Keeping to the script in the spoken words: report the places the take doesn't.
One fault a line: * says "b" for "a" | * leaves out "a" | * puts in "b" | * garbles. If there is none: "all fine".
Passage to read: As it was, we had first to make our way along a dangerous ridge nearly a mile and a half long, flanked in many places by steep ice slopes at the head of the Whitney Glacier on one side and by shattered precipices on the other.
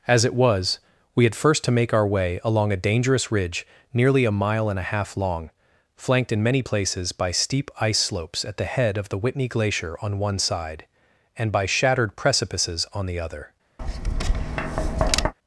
all fine